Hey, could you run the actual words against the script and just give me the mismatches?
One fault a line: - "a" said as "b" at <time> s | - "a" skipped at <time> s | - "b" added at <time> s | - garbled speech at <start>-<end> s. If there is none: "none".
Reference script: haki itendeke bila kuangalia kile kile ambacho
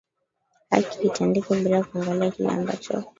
- "kile" skipped at 2.5 s